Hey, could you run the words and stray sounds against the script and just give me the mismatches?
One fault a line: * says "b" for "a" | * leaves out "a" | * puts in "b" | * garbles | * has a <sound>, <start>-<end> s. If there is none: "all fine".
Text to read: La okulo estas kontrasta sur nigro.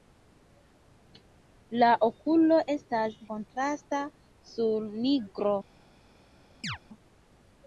* has a chirp, 6.6-6.8 s